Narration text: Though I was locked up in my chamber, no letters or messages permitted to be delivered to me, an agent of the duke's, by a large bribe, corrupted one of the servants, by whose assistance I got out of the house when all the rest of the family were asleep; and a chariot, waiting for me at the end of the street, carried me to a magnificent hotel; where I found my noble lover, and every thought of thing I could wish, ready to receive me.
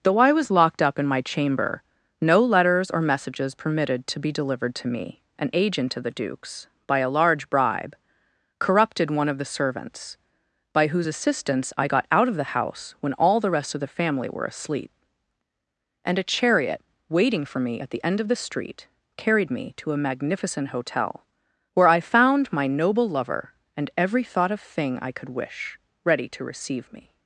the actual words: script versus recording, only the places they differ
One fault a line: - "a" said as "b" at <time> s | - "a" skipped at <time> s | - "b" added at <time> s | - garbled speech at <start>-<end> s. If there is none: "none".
none